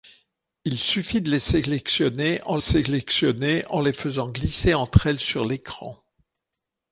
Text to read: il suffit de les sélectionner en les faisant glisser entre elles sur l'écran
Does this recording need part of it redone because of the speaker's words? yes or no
yes